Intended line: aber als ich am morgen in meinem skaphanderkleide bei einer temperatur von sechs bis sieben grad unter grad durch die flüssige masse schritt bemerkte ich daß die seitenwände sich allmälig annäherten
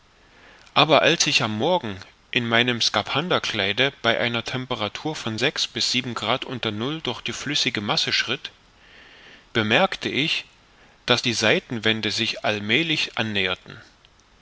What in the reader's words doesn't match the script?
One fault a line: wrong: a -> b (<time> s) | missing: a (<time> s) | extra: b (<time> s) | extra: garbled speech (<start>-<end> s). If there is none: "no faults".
wrong: grad -> null (6.7 s)